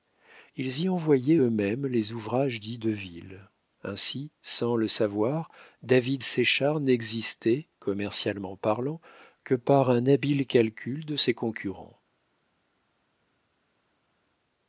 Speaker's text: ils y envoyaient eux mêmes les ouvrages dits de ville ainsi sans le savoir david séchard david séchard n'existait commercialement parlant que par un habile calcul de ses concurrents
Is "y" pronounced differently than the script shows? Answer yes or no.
no